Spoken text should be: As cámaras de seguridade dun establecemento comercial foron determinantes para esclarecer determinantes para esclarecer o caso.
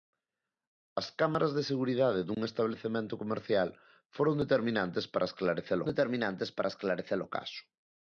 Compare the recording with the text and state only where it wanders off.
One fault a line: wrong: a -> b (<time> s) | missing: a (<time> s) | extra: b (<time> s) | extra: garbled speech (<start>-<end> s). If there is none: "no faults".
no faults